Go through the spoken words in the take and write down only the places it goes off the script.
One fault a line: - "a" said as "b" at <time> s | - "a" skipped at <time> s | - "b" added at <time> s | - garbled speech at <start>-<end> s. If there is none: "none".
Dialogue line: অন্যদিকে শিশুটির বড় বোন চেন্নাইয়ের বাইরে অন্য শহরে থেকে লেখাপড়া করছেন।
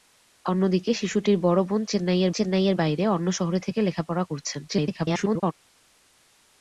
- "চেন্নাইয়ের" added at 2.3 s
- garbled speech at 4.7-5.5 s